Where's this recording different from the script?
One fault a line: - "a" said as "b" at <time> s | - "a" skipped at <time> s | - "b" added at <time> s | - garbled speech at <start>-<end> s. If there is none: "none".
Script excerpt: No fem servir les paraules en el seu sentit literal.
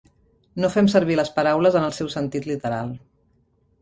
none